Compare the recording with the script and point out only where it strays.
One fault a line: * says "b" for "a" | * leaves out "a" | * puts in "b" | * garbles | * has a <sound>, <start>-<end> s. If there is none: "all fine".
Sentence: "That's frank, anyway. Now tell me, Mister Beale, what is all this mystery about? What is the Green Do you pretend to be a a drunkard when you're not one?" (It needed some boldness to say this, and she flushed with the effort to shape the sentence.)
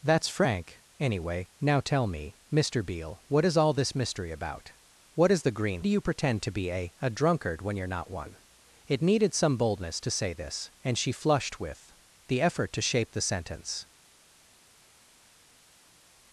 all fine